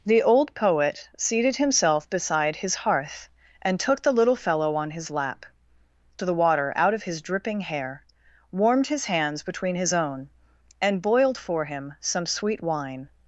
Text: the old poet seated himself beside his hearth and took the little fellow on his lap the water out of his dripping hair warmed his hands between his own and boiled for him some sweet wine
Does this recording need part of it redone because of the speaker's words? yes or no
no